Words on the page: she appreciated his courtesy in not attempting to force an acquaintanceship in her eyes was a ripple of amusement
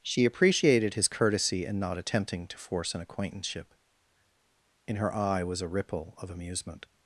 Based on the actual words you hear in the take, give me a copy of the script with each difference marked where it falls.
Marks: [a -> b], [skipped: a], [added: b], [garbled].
she appreciated his courtesy in not attempting to force an acquaintanceship in her [eyes -> eye] was a ripple of amusement